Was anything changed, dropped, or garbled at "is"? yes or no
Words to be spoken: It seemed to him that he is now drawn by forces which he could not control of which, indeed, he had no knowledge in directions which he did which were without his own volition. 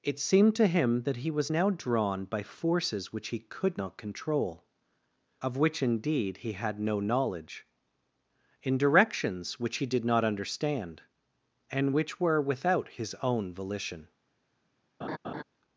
yes